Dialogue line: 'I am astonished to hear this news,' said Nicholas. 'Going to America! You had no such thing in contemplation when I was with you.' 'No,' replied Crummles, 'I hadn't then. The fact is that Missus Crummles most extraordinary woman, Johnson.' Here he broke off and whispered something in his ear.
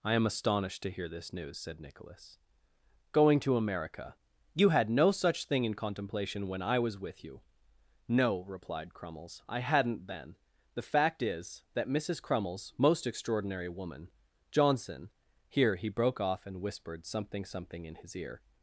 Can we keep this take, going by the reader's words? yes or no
no